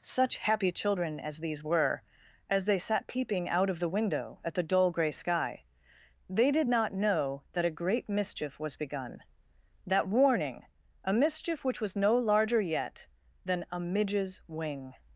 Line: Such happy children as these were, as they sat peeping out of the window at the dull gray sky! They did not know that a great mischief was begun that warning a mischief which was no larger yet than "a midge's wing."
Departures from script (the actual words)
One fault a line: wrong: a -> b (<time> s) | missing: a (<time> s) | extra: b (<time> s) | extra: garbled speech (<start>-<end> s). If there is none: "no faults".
no faults